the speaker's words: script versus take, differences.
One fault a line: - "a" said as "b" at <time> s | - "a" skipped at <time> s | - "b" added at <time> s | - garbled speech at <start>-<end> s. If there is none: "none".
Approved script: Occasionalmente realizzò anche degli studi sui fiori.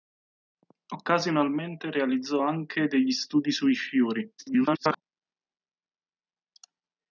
- garbled speech at 4.4-5.0 s